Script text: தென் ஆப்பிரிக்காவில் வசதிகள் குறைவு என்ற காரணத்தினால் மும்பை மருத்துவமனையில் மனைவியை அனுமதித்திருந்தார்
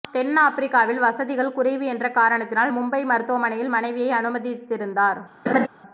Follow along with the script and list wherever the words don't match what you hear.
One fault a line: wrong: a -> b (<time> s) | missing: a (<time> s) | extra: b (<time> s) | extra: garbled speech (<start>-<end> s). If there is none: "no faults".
no faults